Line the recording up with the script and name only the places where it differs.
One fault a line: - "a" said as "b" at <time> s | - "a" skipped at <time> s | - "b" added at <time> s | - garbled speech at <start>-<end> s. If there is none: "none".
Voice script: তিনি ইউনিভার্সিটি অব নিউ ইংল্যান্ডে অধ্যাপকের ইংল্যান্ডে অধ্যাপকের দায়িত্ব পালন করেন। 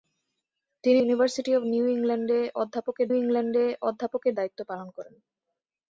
none